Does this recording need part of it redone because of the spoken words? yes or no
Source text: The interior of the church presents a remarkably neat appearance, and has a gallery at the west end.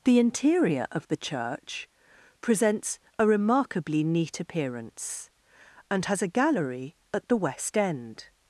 no